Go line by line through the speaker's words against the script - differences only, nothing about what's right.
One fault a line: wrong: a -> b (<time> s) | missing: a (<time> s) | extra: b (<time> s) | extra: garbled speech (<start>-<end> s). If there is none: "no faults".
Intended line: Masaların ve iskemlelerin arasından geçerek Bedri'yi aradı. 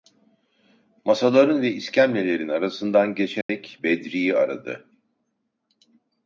no faults